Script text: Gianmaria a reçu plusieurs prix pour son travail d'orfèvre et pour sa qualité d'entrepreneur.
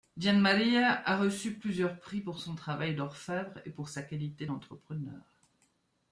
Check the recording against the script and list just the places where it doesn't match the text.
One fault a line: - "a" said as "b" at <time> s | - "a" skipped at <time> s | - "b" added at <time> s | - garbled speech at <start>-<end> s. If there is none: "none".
none